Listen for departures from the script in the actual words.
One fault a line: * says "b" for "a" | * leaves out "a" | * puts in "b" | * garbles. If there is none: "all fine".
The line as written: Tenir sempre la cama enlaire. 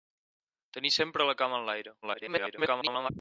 * garbles